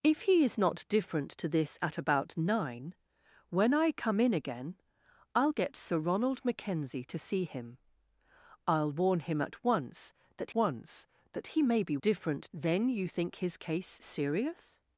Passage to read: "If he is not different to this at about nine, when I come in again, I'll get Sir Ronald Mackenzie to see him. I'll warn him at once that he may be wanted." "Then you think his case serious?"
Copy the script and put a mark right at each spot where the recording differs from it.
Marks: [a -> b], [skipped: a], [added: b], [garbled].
"If he is not different to this at about nine, when I come in again, I'll get Sir Ronald Mackenzie to see him. I'll warn him at once that [added: once that] he may be [wanted." -> different] "Then you think his case serious?"